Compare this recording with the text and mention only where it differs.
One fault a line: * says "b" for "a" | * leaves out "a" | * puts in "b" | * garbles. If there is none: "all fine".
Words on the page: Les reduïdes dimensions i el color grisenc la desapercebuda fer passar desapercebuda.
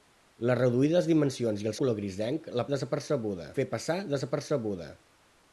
all fine